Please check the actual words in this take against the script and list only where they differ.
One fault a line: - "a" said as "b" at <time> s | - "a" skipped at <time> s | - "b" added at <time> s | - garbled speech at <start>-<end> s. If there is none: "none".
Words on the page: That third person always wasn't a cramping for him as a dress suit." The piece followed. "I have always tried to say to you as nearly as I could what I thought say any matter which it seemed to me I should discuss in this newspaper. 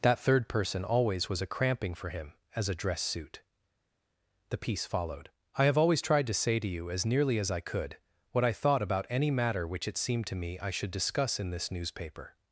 - "wasn't" said as "was" at 1.3 s
- "say" said as "about" at 8.8 s